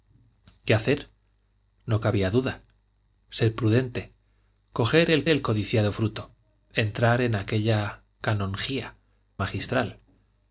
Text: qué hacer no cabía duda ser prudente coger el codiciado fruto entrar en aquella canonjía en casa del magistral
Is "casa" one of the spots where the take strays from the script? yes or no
yes